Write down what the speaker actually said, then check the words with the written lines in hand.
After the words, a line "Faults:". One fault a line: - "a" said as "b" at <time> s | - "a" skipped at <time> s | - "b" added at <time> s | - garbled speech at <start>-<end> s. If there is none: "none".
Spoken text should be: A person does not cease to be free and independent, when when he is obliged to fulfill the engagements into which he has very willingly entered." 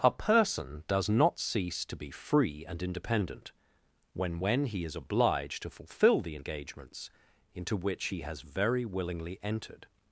A person does not cease to be free and independent, when when he is obliged to fulfill the engagements into which he has very willingly entered."
Faults:
none